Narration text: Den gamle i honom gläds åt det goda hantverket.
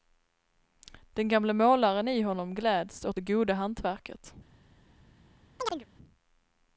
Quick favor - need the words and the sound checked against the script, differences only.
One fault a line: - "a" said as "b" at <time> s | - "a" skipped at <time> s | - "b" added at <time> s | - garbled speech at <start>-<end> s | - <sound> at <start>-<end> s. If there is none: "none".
- "målaren" added at 1.5 s
- chirp at 5.6-5.9 s